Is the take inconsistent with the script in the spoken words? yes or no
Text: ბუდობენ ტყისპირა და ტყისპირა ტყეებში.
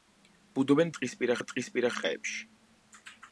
no